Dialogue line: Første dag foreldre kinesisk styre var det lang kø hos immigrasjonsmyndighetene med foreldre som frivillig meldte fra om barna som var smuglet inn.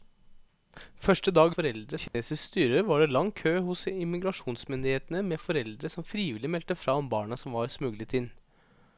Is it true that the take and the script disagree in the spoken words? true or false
false